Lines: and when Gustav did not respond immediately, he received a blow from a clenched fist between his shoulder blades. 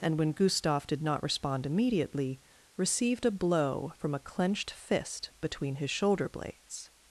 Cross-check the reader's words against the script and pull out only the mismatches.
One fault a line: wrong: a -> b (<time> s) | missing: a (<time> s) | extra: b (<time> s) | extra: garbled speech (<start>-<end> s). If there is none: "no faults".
missing: he (2.4 s)